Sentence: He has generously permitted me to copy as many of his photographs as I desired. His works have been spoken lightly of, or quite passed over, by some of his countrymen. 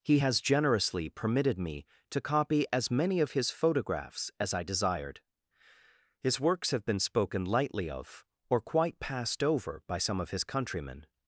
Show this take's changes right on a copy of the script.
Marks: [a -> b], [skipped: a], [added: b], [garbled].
He has generously permitted me to copy as many of his photographs as I desired. His works have been spoken lightly of, or quite passed over, by some of his countrymen.